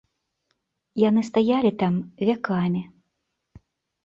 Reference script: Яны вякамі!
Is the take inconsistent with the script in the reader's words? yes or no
yes